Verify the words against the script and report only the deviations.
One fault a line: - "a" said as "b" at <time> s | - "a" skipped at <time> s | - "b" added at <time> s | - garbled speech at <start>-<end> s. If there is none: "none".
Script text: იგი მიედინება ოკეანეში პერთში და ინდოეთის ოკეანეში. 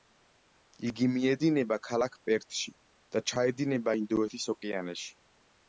- "ოკეანეში" said as "ქალაქ" at 1.9 s
- "ჩაედინება" added at 3.3 s